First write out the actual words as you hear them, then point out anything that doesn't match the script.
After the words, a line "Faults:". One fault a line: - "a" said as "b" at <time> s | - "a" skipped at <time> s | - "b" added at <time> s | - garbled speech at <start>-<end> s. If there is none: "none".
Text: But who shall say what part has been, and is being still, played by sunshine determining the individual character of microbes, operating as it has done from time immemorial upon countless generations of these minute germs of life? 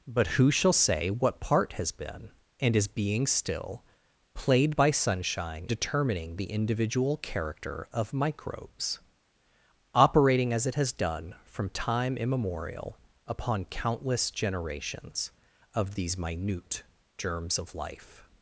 But who shall say what part has been, and is being still, played by sunshine determining the individual character of microbes, operating as it has done from time immemorial upon countless generations of these minute germs of life?
Faults:
none